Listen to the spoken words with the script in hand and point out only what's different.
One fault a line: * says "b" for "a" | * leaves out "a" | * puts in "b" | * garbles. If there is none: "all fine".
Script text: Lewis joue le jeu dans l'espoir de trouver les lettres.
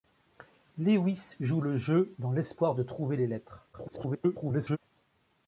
* garbles